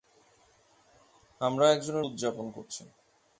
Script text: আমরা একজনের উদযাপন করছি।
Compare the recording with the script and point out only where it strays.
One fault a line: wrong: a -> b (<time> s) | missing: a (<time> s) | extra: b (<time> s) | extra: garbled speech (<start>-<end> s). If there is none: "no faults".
no faults